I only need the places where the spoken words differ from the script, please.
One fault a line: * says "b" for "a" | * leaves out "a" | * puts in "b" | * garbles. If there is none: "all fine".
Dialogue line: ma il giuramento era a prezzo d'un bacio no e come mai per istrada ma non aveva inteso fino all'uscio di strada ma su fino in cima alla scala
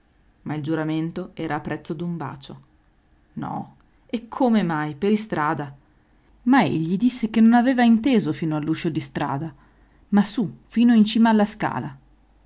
* puts in "egli disse che"